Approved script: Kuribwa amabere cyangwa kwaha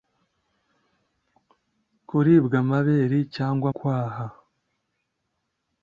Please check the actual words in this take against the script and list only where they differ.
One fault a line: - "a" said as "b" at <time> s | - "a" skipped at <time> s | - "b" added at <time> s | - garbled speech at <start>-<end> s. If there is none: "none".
none